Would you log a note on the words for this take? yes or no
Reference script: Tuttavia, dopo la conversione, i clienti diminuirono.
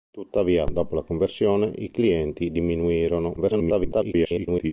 yes